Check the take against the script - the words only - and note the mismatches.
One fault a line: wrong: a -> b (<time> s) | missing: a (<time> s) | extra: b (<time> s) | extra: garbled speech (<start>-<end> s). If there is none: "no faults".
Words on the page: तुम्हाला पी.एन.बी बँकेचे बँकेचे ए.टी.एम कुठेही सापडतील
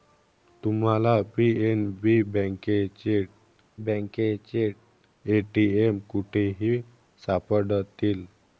no faults